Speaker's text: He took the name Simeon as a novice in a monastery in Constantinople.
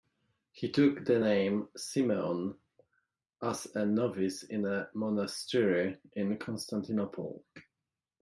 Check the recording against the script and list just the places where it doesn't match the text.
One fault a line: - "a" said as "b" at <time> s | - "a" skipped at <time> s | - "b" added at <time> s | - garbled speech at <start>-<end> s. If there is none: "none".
none